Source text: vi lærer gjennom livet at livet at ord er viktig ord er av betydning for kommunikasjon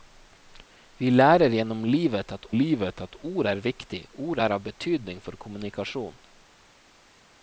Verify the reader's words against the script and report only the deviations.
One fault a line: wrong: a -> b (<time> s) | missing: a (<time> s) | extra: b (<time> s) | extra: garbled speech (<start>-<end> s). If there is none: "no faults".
no faults